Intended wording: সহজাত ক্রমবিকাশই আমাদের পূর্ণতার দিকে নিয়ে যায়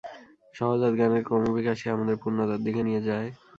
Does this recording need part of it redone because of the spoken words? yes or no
yes